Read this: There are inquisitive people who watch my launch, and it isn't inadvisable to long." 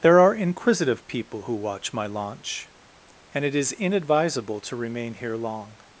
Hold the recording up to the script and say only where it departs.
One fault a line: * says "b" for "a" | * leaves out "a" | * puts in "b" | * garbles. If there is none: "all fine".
* says "is" for "isn't"
* puts in "remain here"